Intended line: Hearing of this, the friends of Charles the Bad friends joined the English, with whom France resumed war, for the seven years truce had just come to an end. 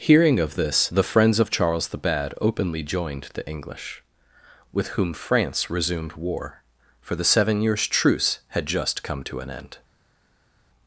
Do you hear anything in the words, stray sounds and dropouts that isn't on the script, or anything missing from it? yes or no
yes